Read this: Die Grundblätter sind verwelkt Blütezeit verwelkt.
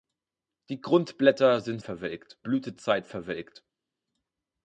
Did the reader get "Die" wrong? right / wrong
right